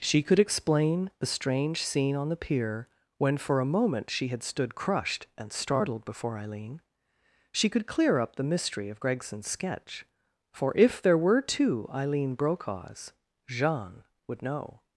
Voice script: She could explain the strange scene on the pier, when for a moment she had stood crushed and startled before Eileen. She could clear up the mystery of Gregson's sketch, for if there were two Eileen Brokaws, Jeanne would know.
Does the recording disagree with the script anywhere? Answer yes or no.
no